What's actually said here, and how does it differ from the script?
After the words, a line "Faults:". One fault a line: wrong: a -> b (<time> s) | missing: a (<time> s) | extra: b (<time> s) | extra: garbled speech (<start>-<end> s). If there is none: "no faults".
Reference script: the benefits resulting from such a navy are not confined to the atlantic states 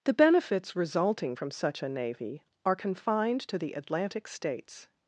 the benefits resulting from such a navy are confined to the atlantic states
Faults:
missing: not (2.8 s)